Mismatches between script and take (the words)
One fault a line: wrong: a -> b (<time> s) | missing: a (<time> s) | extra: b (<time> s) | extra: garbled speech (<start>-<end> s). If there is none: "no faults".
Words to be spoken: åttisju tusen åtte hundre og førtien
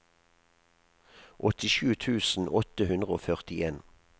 no faults